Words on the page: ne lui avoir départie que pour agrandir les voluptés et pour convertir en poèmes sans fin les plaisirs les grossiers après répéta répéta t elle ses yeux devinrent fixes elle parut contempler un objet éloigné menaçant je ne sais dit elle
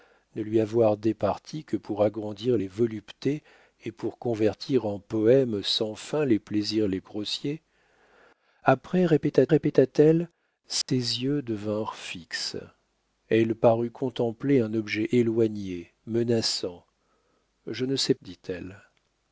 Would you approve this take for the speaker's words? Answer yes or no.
yes